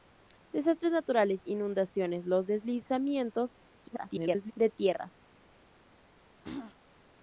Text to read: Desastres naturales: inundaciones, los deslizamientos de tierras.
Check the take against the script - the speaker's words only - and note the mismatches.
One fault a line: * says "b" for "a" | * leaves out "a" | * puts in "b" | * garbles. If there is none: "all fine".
* garbles